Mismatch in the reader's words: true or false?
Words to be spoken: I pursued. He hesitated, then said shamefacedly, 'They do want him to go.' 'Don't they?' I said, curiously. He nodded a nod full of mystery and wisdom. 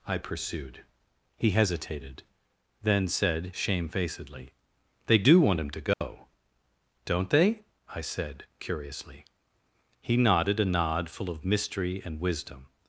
false